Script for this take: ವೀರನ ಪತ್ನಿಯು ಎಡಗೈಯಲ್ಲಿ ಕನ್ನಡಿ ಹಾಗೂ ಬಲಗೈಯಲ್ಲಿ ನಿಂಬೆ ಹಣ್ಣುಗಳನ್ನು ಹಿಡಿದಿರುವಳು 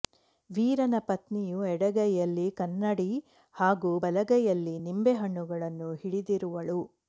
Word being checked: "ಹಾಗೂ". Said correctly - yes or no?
yes